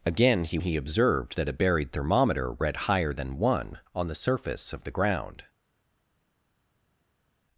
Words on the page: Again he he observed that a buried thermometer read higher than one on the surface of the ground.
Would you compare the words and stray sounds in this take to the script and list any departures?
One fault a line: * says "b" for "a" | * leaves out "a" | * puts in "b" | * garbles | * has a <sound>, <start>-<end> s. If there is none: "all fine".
all fine